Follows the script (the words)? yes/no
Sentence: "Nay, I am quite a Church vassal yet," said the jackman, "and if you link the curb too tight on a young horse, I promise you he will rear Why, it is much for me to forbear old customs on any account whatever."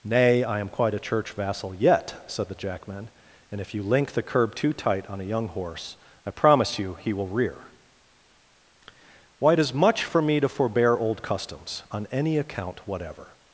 yes